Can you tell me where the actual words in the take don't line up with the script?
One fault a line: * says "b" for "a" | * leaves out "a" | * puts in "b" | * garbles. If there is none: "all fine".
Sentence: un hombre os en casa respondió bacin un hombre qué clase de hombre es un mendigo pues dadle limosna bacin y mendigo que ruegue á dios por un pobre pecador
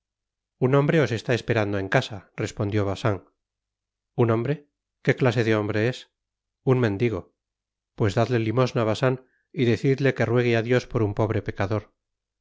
* puts in "está esperando"
* says "decidle" for "mendigo"